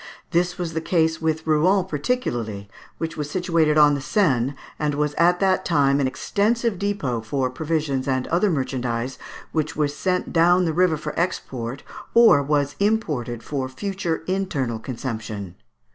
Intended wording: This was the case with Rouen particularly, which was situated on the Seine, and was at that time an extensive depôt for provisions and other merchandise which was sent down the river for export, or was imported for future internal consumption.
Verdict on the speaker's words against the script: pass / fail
pass